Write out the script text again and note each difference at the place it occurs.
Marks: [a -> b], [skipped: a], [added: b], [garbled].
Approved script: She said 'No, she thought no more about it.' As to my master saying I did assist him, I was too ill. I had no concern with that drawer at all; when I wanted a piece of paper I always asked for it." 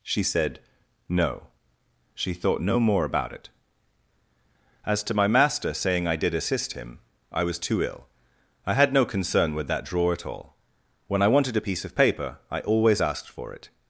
She said 'No, she thought no more about it.' As to my master saying I did assist him, I was too ill. I had no concern with that drawer at all; when I wanted a piece of paper I always asked for it."